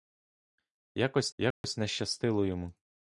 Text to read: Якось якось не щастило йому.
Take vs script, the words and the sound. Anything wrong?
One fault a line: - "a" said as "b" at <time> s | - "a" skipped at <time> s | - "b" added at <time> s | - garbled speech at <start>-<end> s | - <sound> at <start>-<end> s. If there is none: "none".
- dropout at 1.5-1.6 s